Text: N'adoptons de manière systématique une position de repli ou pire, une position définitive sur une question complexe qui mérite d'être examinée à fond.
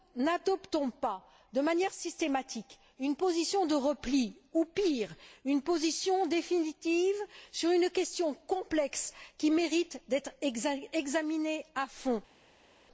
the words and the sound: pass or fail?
fail